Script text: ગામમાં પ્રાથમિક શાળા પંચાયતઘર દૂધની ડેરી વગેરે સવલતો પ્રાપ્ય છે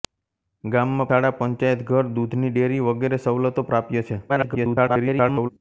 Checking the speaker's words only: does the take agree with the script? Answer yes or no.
no